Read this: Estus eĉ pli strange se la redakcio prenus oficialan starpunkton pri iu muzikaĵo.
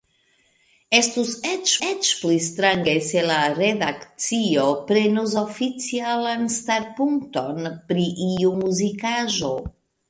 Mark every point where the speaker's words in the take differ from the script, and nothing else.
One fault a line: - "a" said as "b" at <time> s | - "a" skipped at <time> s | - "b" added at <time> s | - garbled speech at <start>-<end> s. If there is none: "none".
- "eĉ" added at 1.9 s